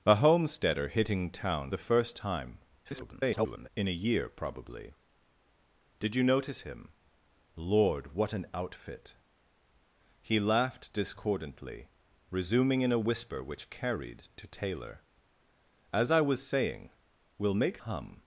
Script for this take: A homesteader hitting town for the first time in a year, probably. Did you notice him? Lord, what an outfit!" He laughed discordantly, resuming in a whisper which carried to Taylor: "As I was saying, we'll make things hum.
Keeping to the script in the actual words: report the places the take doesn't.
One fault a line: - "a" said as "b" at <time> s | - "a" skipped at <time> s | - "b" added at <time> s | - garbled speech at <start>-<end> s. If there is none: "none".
- "for" skipped at 1.7 s
- garbled speech at 2.8-3.7 s
- "things" skipped at 17.8 s